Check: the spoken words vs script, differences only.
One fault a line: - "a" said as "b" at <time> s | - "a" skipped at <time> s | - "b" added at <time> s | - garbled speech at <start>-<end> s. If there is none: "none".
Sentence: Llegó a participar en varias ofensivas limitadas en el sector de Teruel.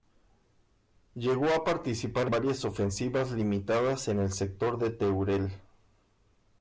- "en" skipped at 2.3 s